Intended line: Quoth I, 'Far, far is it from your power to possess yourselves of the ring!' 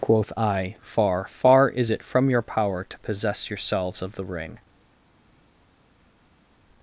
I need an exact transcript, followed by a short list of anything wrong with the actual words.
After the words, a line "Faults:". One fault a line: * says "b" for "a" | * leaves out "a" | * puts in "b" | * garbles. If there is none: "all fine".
Quoth I, 'Far, far is it from your power to possess yourselves of the ring!'
Faults:
all fine